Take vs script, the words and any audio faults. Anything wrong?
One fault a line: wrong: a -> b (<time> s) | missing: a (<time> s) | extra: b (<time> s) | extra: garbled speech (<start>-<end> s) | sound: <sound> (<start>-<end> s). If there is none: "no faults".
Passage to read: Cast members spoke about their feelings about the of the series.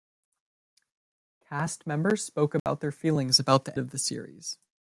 sound: dropout (2.6-2.7 s)